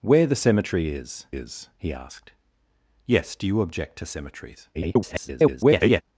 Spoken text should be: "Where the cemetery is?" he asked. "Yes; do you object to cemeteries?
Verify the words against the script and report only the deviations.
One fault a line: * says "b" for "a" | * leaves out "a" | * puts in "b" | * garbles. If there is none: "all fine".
* puts in "is"
* garbles